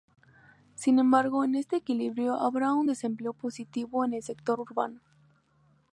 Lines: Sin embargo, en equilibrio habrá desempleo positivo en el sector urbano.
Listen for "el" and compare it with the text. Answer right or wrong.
right